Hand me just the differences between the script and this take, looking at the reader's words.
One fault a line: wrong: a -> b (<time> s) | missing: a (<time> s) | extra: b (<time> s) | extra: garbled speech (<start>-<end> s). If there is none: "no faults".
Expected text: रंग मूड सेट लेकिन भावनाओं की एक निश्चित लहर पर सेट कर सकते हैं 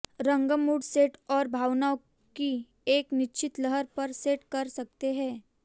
wrong: लेकिन -> और (1.3 s)